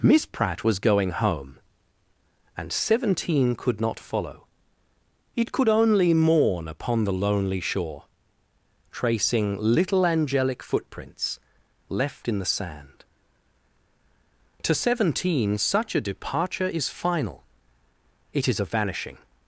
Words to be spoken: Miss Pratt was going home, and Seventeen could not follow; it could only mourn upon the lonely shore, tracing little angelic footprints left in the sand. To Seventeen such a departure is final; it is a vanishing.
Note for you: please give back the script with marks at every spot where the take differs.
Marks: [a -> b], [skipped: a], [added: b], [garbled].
Miss Pratt was going home, and Seventeen could not follow; it could only mourn upon the lonely shore, tracing little angelic footprints left in the sand. To Seventeen such a departure is final; it is a vanishing.